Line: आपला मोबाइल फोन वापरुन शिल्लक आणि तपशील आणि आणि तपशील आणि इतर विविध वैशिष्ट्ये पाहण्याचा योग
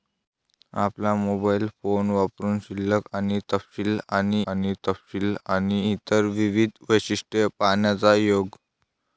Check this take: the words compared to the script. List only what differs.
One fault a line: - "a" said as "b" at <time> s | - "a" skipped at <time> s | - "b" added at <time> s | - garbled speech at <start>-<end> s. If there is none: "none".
none